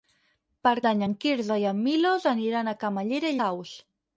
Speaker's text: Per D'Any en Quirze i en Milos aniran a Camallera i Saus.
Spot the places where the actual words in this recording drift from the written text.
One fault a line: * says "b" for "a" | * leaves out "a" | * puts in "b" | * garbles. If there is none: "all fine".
all fine